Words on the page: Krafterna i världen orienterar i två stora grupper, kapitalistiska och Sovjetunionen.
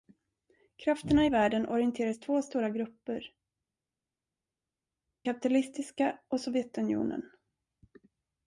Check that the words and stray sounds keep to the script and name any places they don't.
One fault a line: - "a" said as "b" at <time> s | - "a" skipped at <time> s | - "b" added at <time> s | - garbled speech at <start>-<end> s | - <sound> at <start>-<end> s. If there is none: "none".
none